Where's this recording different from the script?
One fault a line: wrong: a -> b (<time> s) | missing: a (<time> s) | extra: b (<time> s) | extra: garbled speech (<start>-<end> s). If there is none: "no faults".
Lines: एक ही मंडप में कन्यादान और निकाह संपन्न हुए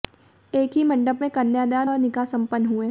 no faults